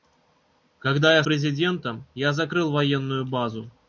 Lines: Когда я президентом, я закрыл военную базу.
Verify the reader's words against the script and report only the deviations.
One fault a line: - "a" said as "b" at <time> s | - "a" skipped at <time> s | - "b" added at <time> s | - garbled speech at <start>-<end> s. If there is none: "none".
none